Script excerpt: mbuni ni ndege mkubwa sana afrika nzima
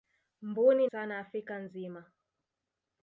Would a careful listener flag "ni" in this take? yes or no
yes